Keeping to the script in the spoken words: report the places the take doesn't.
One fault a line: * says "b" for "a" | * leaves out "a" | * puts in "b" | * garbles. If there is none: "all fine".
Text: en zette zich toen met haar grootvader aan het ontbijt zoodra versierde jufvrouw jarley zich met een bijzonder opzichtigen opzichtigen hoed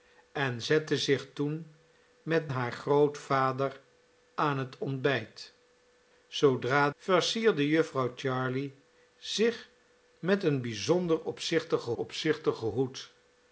all fine